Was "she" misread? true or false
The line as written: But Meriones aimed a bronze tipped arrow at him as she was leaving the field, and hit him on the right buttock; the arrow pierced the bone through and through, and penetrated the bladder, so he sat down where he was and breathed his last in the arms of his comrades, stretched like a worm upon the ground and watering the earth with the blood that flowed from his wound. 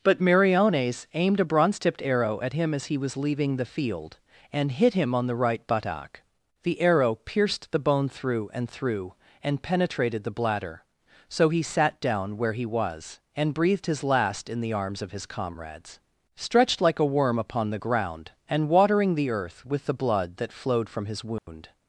true